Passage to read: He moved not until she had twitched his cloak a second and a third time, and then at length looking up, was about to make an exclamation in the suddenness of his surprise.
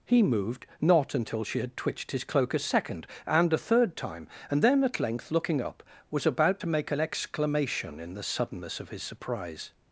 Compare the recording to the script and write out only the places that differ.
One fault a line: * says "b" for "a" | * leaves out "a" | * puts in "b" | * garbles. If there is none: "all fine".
all fine